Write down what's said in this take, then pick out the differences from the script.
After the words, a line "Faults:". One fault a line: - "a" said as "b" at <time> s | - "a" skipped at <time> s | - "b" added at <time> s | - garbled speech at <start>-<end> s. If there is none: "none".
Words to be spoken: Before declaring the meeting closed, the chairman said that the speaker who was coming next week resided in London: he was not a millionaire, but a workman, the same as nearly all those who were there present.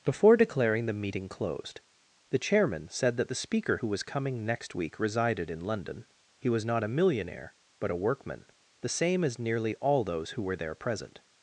Before declaring the meeting closed, the chairman said that the speaker who was coming next week resided in London: he was not a millionaire, but a workman, the same as nearly all those who were there present.
Faults:
none